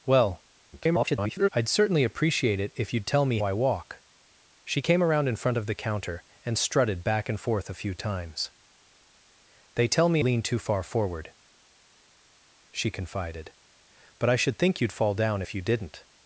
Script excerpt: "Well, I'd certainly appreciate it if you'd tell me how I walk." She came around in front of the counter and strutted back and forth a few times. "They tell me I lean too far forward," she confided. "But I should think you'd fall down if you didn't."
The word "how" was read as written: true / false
false